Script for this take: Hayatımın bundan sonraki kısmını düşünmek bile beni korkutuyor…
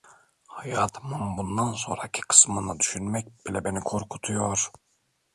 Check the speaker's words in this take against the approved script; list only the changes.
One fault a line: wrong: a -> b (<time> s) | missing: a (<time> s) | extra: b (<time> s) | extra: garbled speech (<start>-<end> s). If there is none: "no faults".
no faults